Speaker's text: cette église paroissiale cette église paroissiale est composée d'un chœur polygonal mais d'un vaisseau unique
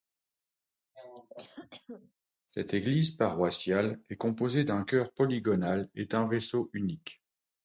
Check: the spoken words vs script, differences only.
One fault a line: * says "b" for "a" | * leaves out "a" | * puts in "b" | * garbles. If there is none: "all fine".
* leaves out "cette église paroissiale"
* says "et" for "mais"